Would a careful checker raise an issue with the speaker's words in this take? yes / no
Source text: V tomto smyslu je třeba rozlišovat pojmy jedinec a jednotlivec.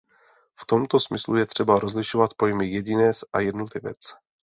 no